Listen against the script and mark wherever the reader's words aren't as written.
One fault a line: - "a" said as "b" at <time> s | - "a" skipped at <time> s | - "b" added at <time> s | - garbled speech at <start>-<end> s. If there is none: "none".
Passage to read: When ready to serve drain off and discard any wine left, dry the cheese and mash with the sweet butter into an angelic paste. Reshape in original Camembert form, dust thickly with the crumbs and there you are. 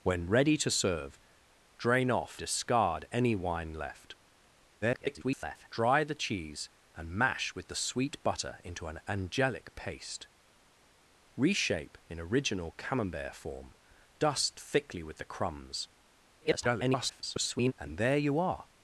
- "and" skipped at 2.4 s
- garbled speech at 4.8-5.7 s
- garbled speech at 16.4-17.7 s